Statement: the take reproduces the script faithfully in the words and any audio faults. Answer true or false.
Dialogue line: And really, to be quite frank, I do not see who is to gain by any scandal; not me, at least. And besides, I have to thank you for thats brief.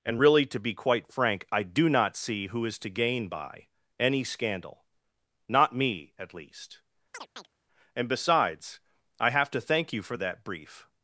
false